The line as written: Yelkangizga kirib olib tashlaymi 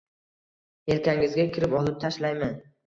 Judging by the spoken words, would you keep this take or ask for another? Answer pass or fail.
pass